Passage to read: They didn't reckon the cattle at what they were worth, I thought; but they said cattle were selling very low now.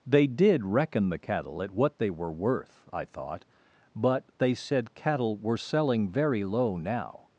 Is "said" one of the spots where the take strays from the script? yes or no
no